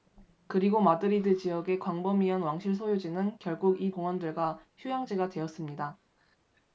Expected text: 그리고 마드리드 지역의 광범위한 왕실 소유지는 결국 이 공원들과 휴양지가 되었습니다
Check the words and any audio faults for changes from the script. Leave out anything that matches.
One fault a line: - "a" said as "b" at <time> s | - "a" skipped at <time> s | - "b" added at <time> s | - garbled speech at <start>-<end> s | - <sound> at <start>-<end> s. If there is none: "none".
none